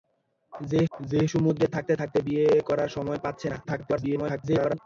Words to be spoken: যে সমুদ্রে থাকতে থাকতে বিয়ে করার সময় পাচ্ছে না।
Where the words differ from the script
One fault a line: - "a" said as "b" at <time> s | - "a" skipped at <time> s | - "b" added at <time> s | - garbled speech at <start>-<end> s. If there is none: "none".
- "যে" added at 0.9 s
- garbled speech at 3.6-4.8 s